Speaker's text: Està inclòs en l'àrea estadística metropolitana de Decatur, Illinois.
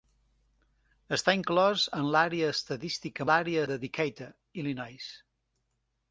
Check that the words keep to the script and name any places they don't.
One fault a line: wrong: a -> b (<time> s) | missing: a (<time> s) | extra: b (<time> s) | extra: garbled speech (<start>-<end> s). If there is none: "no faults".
wrong: metropolitana -> l'àrea (3.3 s)